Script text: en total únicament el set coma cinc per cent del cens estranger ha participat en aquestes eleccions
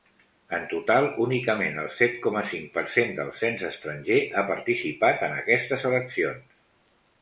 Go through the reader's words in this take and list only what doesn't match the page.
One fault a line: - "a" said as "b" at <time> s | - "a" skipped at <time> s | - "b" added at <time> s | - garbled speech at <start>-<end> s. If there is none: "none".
none